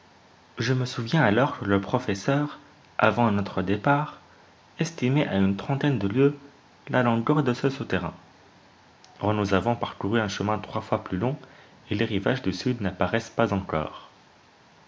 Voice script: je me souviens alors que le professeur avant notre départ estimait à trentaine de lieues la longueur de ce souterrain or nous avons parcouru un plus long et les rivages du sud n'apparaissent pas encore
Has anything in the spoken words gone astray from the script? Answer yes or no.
yes